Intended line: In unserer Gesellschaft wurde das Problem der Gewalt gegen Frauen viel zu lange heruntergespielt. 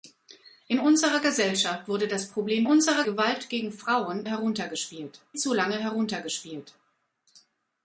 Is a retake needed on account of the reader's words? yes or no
yes